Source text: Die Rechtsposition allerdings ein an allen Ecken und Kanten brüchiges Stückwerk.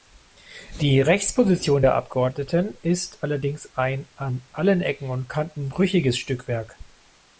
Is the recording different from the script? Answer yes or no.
yes